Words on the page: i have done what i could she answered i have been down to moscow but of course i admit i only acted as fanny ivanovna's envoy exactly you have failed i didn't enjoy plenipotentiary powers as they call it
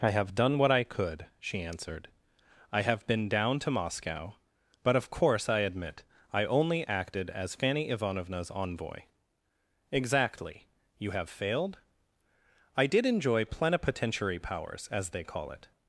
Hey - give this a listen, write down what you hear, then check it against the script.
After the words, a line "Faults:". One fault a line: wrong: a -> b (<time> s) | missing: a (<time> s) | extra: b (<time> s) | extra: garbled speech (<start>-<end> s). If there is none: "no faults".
i have done what i could she answered i have been down to moscow but of course i admit i only acted as fanny ivanovna's envoy exactly you have failed i did enjoy plenipotentiary powers as they call it
Faults:
wrong: didn't -> did (12.9 s)